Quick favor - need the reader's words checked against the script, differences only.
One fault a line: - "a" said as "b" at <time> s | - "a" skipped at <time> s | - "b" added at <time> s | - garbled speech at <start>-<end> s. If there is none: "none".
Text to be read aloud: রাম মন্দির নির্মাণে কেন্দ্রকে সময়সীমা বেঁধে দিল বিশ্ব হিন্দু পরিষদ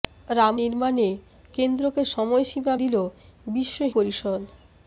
- "মন্দির" skipped at 0.6 s
- "বেঁধে" skipped at 2.7 s
- "হিন্দু" skipped at 3.8 s